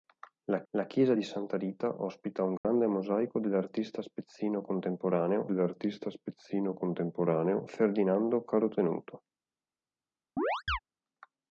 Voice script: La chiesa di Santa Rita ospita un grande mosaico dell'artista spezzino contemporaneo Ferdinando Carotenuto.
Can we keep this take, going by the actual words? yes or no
no